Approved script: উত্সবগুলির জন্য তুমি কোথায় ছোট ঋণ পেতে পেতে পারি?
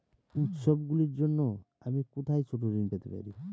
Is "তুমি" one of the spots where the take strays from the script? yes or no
yes